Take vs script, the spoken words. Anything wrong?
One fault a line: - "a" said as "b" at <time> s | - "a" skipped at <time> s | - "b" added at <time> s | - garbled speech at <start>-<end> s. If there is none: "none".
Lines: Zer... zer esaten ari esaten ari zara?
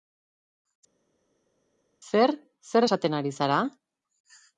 - "esaten ari" skipped at 3.4 s